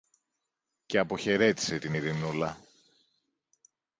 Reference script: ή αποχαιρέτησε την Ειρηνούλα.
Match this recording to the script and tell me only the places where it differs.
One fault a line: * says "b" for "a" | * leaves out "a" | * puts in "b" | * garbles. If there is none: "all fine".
* says "και" for "ή"